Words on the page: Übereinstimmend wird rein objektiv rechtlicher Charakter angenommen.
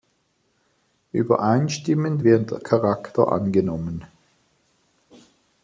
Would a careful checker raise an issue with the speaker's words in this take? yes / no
yes